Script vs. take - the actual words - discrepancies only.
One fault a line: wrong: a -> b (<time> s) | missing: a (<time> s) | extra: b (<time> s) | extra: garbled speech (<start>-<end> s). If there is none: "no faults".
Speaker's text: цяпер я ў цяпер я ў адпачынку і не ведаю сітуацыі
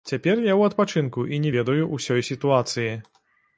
missing: цяпер я ў (0.7 s)
extra: ўсёй (1.9 s)